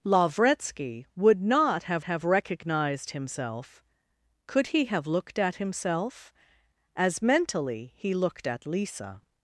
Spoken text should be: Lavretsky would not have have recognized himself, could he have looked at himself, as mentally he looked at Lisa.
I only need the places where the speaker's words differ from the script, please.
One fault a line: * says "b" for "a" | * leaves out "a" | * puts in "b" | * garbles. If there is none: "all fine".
all fine